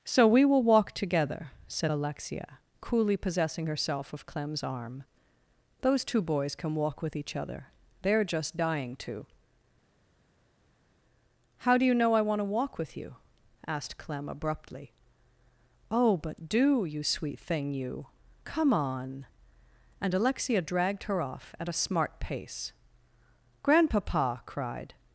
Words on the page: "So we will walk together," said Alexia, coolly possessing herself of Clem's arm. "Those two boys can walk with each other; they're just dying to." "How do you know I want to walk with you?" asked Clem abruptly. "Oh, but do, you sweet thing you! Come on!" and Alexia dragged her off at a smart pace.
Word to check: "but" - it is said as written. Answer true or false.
true